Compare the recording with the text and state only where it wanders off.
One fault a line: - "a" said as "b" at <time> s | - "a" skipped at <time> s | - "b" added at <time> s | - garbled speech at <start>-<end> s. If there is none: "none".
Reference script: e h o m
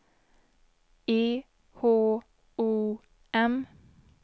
none